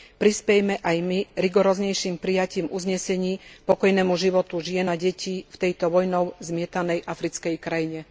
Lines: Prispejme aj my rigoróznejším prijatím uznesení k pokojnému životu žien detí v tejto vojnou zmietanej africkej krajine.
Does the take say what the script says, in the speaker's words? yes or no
no